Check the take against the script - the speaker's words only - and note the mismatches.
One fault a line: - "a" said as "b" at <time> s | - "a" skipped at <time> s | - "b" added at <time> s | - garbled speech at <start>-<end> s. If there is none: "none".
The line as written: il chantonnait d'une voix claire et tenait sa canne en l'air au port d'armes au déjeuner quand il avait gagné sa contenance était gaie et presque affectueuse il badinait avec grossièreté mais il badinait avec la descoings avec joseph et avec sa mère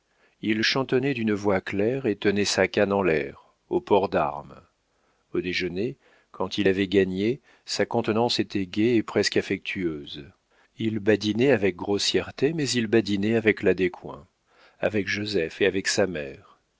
none